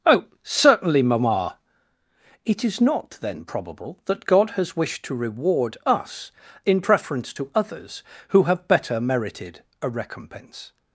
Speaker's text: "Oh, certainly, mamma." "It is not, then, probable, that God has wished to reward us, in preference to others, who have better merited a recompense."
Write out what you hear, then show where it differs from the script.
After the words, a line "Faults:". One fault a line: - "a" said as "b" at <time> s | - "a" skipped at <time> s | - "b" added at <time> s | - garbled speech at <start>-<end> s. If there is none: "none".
"Oh, certainly, mamma." "It is not, then, probable, that God has wished to reward us, in preference to others, who have better merited a recompense."
Faults:
none